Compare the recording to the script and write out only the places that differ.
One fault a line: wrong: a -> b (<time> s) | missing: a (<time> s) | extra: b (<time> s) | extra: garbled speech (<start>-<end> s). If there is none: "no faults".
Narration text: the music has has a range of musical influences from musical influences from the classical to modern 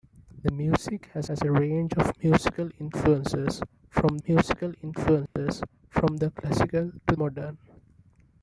no faults